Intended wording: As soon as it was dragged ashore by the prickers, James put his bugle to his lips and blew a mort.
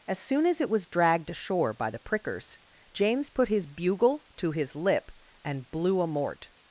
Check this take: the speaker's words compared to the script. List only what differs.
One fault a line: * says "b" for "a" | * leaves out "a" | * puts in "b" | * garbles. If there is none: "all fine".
* says "lip" for "lips"